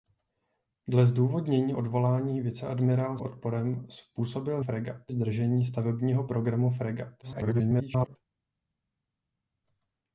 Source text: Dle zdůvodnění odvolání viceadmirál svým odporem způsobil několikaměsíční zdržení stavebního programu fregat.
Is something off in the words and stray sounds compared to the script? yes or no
yes